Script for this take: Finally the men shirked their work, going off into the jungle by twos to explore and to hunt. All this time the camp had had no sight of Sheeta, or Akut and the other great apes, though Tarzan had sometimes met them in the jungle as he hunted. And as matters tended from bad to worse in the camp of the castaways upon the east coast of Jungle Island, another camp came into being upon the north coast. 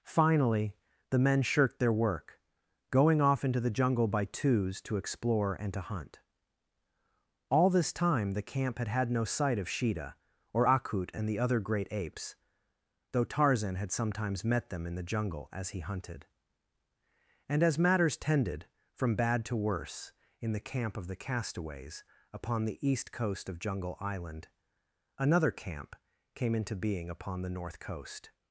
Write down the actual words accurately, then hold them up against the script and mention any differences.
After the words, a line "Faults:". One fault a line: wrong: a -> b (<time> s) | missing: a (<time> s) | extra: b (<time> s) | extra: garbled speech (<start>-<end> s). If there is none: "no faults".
Finally the men shirked their work, going off into the jungle by twos to explore and to hunt. All this time the camp had had no sight of Sheeta, or Akut and the other great apes, though Tarzan had sometimes met them in the jungle as he hunted. And as matters tended from bad to worse in the camp of the castaways upon the east coast of Jungle Island, another camp came into being upon the north coast.
Faults:
no faults